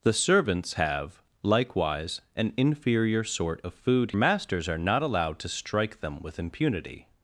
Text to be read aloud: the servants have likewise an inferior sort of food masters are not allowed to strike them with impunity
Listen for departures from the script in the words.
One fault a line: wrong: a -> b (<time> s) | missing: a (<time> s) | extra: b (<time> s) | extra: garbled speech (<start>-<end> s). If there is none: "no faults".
no faults